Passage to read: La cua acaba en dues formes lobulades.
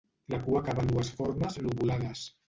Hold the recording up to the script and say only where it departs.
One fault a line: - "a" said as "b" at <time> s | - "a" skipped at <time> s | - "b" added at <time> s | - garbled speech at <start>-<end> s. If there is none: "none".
none